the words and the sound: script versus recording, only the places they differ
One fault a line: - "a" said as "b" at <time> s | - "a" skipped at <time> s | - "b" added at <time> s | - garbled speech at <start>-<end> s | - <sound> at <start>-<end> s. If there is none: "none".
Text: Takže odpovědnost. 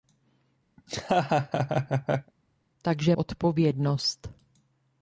- laugh at 0.8-2.3 s